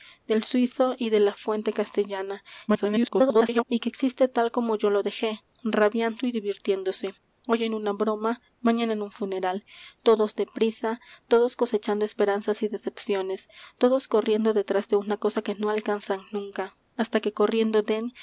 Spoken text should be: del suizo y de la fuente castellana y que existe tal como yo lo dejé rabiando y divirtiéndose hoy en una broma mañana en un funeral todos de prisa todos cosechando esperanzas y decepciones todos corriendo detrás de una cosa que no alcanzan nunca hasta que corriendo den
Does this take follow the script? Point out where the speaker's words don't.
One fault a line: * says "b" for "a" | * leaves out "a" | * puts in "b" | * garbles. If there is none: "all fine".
* garbles